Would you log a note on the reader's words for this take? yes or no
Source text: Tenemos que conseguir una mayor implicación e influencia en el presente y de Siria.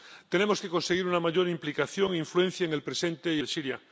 no